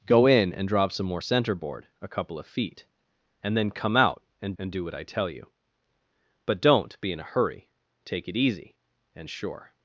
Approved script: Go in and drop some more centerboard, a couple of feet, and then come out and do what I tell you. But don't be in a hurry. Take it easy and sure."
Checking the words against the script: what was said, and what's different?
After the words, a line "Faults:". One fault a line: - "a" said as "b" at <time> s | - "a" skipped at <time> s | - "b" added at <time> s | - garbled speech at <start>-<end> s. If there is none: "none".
Go in and drop some more centerboard, a couple of feet, and then come out and and do what I tell you. But don't be in a hurry. Take it easy and sure."
Faults:
- "and" added at 4.6 s